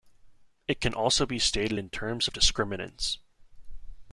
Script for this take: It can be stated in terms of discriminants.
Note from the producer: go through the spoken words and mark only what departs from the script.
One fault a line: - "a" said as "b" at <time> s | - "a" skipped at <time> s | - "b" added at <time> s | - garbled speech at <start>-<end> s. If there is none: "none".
- "also" added at 0.9 s